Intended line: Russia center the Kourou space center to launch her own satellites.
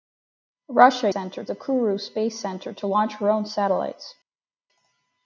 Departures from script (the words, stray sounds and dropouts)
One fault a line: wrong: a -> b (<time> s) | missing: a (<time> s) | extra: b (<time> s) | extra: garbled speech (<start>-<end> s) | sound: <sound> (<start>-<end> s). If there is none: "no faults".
no faults